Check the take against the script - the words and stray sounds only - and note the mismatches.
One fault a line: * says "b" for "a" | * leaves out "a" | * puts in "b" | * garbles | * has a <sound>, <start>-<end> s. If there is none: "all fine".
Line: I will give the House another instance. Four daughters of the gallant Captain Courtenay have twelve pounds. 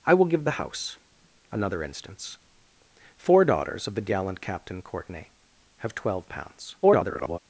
* garbles